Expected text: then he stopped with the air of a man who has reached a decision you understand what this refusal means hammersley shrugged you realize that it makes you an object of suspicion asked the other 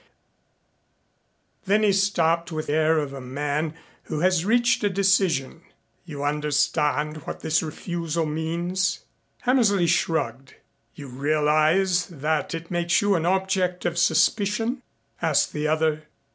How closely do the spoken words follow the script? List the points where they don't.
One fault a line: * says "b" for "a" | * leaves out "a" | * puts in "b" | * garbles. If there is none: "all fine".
* leaves out "the"